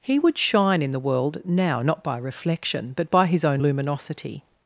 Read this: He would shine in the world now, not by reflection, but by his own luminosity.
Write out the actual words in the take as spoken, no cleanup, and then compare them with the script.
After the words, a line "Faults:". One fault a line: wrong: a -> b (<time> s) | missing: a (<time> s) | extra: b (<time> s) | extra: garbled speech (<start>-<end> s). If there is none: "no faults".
He would shine in the world now, not by reflection, but by his own luminosity.
Faults:
no faults